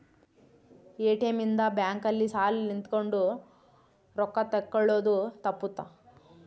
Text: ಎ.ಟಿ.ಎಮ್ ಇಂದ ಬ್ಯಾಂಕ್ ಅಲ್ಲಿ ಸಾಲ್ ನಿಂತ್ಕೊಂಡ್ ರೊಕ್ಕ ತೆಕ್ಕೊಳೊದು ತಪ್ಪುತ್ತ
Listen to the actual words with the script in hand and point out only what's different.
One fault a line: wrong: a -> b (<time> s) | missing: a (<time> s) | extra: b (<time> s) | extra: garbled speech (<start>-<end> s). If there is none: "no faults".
no faults